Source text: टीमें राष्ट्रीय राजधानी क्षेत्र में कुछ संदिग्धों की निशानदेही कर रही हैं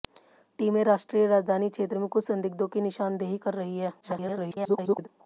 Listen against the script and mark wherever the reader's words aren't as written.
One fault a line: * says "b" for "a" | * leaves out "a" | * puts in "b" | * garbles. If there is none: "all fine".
* garbles